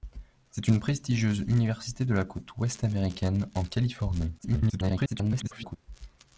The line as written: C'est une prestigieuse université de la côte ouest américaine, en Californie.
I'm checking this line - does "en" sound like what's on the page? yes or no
yes